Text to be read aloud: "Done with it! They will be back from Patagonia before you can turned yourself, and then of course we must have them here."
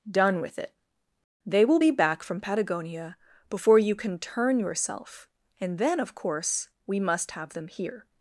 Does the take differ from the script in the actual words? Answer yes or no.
yes